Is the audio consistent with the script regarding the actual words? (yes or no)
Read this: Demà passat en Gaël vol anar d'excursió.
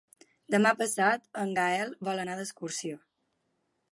yes